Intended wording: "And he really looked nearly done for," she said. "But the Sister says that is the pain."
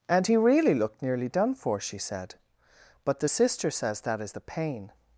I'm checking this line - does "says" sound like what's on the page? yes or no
yes